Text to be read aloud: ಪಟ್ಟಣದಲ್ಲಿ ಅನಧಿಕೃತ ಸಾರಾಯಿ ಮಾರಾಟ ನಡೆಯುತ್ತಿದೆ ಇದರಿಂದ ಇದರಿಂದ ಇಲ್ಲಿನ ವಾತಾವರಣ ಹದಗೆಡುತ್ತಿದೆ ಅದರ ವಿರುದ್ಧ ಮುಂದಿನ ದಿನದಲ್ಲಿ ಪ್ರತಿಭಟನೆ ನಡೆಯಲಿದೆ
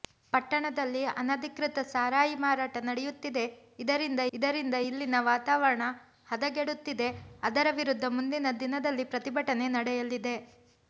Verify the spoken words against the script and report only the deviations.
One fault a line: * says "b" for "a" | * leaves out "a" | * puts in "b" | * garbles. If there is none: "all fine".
all fine